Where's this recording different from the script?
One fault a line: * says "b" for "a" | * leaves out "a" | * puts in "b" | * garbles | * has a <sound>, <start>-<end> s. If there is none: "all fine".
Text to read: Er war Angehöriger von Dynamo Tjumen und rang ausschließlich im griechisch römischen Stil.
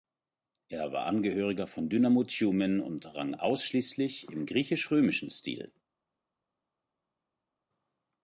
all fine